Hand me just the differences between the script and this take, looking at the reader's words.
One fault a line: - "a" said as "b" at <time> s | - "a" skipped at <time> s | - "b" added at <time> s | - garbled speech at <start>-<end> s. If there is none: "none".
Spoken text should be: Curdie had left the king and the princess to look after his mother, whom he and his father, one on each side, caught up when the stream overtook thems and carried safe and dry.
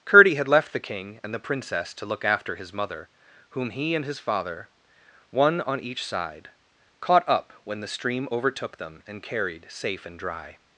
- "thems" said as "them" at 8.8 s